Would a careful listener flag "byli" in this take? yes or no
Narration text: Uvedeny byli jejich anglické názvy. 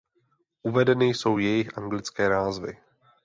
yes